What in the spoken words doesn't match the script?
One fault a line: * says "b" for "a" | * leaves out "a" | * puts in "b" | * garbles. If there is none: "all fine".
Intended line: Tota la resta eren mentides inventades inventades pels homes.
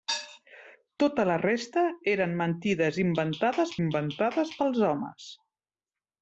all fine